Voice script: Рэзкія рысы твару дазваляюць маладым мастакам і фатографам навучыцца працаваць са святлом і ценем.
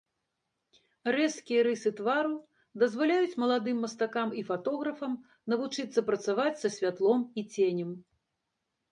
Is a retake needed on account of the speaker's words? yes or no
no